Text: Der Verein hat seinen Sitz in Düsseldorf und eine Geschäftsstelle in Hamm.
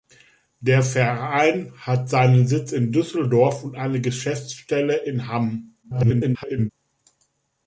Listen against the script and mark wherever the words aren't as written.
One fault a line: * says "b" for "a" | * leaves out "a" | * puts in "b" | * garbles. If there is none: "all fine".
* garbles